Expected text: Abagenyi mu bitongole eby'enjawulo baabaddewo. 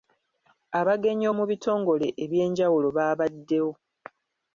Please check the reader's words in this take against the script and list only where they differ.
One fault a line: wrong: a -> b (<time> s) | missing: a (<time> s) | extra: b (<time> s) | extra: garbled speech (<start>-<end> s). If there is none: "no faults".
no faults